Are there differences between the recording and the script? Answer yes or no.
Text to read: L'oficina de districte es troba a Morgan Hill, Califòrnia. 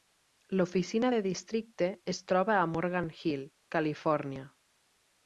no